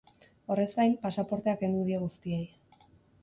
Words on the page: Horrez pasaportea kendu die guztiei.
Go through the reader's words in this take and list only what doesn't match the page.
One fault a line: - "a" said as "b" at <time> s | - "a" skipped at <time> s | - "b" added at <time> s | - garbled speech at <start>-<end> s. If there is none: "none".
- "gain" added at 0.8 s